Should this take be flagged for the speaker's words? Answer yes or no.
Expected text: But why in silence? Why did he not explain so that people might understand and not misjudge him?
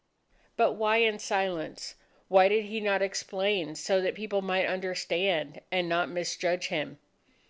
no